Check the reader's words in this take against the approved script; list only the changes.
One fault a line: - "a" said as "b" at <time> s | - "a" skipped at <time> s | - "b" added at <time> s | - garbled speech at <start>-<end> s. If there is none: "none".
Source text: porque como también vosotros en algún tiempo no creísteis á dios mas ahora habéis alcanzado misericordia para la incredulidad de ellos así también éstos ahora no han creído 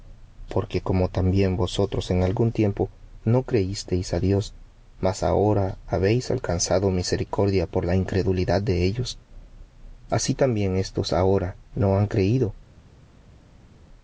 - "para" said as "por" at 7.7 s